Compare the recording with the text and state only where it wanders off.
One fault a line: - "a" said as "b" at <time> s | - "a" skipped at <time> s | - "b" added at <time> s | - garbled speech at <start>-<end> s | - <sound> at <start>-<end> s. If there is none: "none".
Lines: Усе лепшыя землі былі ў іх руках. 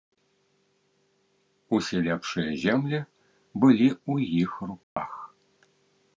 - dropout at 4.8-5.0 s